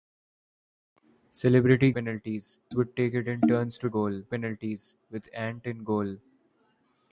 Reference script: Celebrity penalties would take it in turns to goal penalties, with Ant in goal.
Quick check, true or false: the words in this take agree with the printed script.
true